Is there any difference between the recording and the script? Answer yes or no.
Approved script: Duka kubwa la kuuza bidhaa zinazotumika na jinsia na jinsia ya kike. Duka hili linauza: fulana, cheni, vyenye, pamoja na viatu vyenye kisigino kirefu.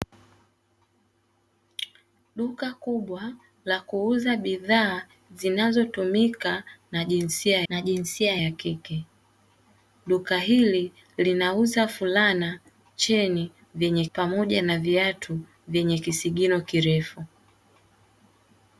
no